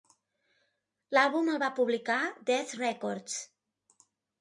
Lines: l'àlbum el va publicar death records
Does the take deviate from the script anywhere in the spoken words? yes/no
no